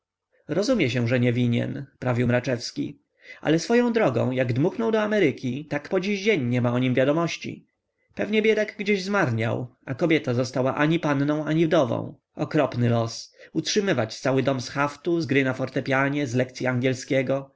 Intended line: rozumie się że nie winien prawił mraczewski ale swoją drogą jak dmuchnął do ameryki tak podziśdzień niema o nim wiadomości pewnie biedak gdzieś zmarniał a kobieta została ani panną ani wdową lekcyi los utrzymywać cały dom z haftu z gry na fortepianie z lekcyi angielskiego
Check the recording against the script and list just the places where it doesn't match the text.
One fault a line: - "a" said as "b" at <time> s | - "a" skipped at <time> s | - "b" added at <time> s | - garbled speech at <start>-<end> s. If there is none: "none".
- "lekcyi" said as "okropny" at 12.4 s